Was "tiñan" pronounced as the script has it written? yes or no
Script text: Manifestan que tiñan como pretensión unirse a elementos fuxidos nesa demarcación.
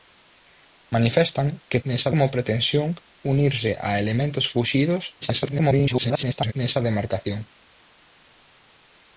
no